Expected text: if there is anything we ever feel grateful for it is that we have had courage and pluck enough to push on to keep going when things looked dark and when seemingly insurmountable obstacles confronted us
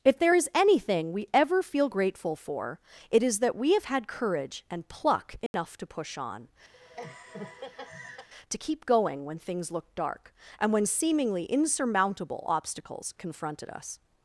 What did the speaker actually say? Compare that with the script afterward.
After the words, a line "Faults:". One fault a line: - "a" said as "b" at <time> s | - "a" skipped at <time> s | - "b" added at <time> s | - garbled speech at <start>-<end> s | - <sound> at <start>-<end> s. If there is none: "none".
if there is anything we ever feel grateful for it is that we have had courage and pluck enough to push on to keep going when things looked dark and when seemingly insurmountable obstacles confronted us
Faults:
- dropout at 5.5-5.5 s
- laugh at 6.7-8.3 s